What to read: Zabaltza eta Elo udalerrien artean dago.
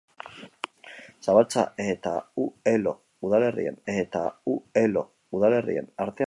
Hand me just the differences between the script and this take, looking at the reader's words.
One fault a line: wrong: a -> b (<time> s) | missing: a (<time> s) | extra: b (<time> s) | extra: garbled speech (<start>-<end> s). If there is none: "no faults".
extra: eta Elo udalerrien (3.9 s)